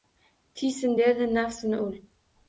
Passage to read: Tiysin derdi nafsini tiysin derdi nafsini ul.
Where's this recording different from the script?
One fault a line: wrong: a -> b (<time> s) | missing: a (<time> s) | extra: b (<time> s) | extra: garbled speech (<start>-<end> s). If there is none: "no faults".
missing: tiysin derdi nafsini (1.8 s)